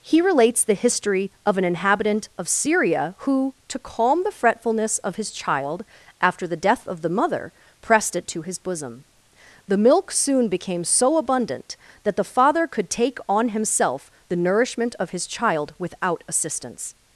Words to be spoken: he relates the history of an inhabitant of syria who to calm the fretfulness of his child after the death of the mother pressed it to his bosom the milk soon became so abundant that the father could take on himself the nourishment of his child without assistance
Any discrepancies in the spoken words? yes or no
no